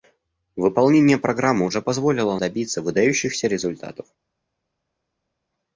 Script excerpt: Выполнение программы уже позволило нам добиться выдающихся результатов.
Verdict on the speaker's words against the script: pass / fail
fail